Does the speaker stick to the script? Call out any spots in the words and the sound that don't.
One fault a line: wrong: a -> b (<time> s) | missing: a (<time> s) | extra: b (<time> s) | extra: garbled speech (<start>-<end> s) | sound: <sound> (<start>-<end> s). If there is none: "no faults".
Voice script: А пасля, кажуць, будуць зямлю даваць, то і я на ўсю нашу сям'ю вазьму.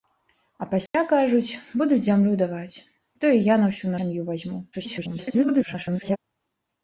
sound: dropout (0.9-0.9 s)
missing: нашу (4.0 s)
extra: garbled speech (4.7-6.2 s)